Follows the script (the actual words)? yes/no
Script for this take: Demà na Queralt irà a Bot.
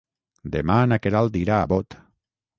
yes